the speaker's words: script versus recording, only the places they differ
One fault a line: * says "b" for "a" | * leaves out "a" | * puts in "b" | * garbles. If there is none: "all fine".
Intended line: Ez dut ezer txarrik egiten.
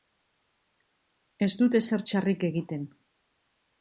all fine